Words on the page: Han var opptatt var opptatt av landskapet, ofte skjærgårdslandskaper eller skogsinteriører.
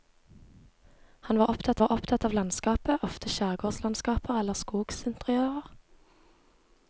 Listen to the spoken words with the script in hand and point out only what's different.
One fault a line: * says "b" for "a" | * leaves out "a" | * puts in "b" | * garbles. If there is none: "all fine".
all fine